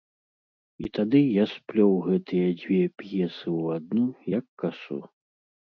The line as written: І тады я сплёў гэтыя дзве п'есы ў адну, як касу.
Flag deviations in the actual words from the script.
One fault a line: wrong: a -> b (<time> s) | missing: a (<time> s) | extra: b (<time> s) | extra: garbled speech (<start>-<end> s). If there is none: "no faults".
no faults